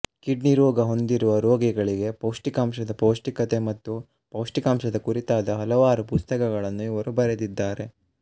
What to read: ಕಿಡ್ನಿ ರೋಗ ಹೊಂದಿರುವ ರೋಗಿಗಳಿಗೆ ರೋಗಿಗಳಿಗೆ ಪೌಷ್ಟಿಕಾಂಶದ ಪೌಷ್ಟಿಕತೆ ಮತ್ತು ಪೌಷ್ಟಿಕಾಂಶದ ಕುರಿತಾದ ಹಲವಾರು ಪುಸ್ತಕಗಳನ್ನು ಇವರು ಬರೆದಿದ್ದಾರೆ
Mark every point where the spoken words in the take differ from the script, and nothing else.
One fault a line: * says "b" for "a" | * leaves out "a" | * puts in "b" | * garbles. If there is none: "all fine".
* leaves out "ರೋಗಿಗಳಿಗೆ"